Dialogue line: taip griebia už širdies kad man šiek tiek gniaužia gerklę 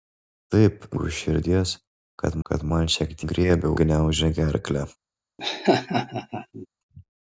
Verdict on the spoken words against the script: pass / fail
fail